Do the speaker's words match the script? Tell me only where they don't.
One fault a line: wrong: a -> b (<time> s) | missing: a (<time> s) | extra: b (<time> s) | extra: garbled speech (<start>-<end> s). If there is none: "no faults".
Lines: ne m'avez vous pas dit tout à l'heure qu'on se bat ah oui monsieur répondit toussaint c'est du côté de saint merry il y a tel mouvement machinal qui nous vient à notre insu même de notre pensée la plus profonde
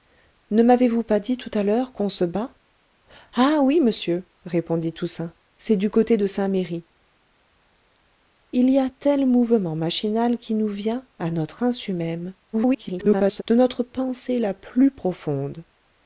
extra: garbled speech (12.5-13.4 s)